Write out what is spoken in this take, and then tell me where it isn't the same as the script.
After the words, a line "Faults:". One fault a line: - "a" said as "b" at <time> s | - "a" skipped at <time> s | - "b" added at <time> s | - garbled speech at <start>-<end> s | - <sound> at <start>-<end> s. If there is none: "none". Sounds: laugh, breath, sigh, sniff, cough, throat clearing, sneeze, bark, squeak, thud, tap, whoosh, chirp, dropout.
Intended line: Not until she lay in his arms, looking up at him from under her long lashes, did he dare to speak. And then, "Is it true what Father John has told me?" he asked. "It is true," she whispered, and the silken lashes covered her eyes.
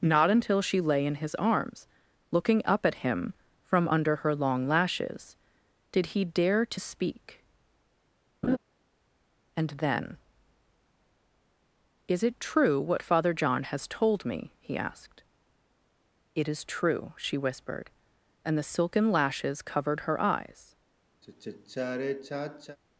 Not until she lay in his arms, looking up at him from under her long lashes, did he dare to speak. And then, "Is it true what Father John has told me?" he asked. "It is true," she whispered, and the silken lashes covered her eyes.
Faults:
- laugh at 8.4-8.6 s
- sigh at 21.2-22.8 s